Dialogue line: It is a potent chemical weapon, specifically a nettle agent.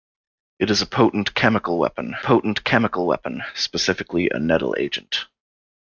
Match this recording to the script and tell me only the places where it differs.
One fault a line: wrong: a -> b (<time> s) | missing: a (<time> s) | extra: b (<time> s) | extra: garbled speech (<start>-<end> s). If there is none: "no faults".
extra: potent chemical weapon (2.2 s)